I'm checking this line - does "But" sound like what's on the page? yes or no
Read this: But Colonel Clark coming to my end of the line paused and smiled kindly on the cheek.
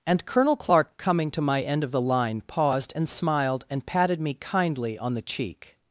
no